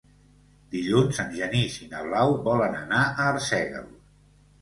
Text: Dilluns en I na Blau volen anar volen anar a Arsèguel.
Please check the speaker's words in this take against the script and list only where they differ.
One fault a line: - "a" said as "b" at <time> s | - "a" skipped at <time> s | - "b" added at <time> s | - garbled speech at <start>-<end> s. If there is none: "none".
- "Genís" added at 1.4 s
- "volen anar" skipped at 3.0 s